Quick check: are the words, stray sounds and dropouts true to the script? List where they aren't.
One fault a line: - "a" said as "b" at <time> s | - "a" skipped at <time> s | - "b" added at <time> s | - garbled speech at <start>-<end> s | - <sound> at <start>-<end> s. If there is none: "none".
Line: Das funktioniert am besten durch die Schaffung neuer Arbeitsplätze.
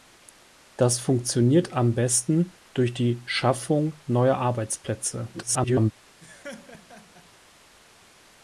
- garbled speech at 5.3-5.9 s
- laugh at 6.2-7.3 s